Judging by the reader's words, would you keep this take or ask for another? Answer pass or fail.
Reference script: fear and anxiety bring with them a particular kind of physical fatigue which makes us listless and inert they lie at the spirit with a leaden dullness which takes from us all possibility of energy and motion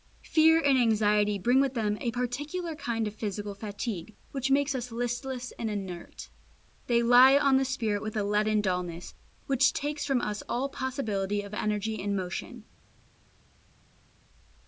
fail